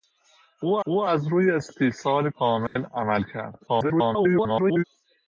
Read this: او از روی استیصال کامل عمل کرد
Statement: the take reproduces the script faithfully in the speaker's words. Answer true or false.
false